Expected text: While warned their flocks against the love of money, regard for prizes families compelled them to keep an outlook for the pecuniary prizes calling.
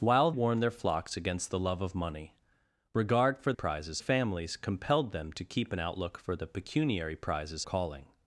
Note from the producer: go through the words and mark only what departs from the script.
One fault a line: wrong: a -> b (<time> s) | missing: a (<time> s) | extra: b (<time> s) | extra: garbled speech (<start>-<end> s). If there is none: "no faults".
no faults